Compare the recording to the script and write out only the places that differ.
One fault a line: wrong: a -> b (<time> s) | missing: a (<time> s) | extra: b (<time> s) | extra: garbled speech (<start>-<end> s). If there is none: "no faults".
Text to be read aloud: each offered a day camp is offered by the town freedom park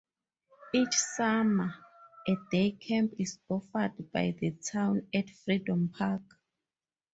wrong: offered -> summer (0.9 s)
extra: at (5.1 s)